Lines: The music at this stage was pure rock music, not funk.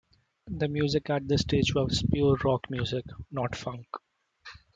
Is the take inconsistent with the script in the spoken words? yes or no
no